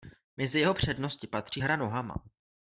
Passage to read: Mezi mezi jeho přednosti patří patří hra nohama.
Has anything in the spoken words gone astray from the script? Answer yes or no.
yes